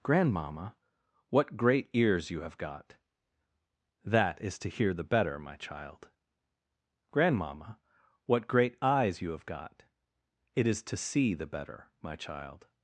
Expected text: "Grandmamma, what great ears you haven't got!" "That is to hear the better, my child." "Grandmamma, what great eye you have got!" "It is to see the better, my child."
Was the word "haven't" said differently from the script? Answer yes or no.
yes